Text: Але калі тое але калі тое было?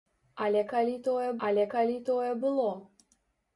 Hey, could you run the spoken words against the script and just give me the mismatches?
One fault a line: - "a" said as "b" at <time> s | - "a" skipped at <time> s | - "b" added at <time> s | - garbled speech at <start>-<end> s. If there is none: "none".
none